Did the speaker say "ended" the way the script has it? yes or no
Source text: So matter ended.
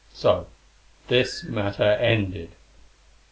yes